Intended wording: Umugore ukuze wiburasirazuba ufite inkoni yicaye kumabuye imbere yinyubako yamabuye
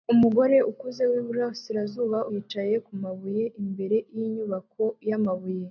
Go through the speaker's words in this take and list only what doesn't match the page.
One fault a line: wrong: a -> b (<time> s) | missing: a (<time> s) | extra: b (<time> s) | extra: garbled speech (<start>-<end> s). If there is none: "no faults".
missing: ufite inkoni (2.2 s)